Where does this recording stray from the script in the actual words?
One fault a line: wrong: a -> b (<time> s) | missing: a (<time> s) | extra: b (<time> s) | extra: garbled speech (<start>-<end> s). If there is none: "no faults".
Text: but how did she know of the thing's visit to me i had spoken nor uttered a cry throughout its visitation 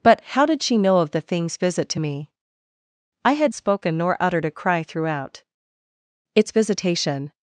no faults